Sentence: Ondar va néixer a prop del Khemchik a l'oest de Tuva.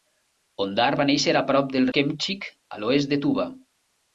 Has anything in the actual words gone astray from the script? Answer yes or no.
no